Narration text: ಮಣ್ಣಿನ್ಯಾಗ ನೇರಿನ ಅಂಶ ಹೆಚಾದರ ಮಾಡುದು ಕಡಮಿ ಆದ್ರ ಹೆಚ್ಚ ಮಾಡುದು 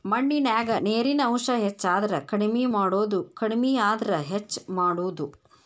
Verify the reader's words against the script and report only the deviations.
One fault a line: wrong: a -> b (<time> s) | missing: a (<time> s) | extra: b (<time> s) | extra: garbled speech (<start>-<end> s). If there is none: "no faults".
extra: ಕಡಮಿ (2.3 s)